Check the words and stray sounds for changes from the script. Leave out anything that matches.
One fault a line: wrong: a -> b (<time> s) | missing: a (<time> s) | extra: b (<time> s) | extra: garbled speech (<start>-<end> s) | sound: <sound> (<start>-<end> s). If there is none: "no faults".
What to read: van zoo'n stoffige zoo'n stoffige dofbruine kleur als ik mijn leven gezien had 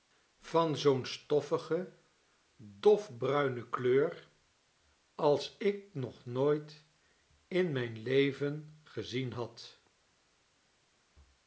missing: zoo'n stoffige (1.9 s)
extra: nog nooit in (5.9 s)